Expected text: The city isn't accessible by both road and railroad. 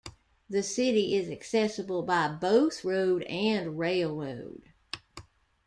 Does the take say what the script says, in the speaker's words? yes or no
no